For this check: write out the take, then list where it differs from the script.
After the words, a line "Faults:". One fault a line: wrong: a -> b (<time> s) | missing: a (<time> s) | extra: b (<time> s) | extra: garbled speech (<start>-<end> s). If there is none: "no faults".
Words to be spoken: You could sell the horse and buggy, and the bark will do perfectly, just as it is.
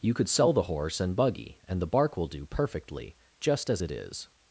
You could sell the horse and buggy, and the bark will do perfectly, just as it is.
Faults:
no faults